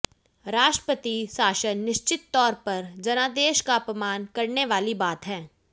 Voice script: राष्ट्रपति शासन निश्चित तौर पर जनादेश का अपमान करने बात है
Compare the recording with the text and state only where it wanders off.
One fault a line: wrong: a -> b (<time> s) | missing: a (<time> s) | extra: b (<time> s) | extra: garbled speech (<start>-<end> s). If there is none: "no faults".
extra: वाली (4.7 s)